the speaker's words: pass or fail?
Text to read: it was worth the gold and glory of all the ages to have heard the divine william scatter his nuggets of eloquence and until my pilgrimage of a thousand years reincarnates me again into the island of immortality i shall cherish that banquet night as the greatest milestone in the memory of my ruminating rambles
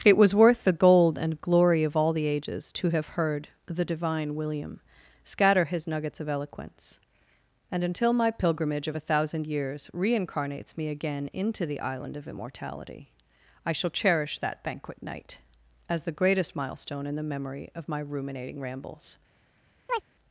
pass